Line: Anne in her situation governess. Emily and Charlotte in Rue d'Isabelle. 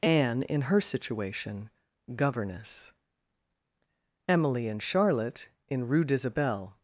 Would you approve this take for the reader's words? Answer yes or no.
yes